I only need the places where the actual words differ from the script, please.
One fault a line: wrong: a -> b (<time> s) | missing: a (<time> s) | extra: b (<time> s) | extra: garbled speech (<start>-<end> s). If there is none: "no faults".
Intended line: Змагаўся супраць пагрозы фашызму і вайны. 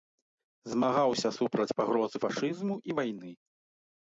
no faults